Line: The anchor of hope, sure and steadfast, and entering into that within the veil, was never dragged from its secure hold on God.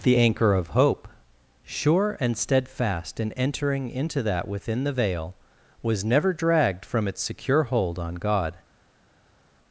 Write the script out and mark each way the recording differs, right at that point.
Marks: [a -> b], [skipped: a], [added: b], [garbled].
The anchor of hope, sure and steadfast, [and -> in] entering into that within the veil, was never dragged from its secure hold on God.